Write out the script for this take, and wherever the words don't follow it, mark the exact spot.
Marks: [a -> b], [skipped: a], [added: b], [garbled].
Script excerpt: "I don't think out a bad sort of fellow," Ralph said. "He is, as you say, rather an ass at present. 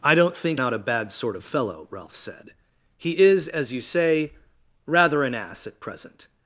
"I don't think out a bad sort of fellow," Ralph said. "He is, as you say, rather an ass at present.